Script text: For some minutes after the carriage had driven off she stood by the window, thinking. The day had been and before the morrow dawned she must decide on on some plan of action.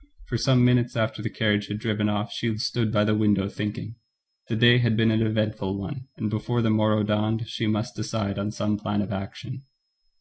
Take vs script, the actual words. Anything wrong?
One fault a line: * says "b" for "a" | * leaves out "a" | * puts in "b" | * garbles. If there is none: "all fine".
* puts in "an eventful one"
* leaves out "on"